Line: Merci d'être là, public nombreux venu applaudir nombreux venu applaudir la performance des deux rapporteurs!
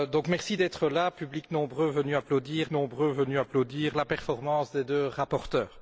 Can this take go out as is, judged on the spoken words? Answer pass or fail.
pass